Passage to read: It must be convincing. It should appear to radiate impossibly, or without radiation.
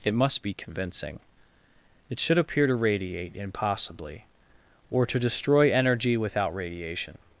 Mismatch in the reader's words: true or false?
true